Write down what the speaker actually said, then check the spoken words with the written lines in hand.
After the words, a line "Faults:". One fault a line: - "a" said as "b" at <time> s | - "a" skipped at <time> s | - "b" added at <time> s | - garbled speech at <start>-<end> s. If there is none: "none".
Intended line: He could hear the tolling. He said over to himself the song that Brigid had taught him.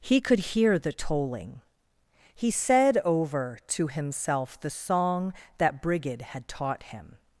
He could hear the tolling. He said over to himself the song that Brigid had taught him.
Faults:
none